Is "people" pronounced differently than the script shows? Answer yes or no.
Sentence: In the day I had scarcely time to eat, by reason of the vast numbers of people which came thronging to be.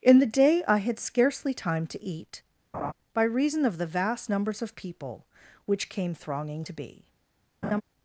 no